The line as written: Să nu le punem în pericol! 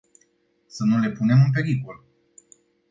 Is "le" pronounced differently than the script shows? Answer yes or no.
no